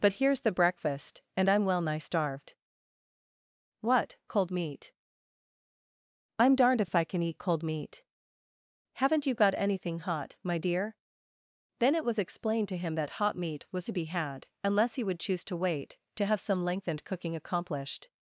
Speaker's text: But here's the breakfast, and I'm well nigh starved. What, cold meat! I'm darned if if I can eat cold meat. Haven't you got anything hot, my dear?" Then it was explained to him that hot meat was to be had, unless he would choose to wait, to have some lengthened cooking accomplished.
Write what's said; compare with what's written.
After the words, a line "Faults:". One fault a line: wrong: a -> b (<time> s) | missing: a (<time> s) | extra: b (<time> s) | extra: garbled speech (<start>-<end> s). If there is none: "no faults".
But here's the breakfast, and I'm well nigh starved. What, cold meat! I'm darned if if I can eat cold meat. Haven't you got anything hot, my dear?" Then it was explained to him that hot meat was to be had, unless he would choose to wait, to have some lengthened cooking accomplished.
Faults:
no faults